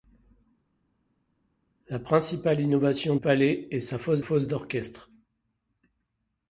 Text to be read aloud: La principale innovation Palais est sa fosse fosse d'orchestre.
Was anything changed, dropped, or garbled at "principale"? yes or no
no